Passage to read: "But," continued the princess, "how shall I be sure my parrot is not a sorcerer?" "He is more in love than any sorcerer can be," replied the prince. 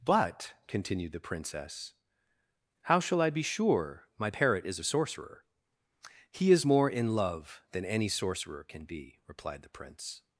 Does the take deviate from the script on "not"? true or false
true